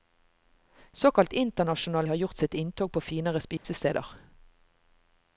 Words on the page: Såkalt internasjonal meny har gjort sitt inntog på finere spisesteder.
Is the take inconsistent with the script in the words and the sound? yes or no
yes